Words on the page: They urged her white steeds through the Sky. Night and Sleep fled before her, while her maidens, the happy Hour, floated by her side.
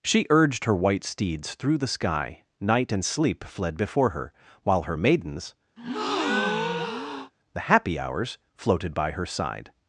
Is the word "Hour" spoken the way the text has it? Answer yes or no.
no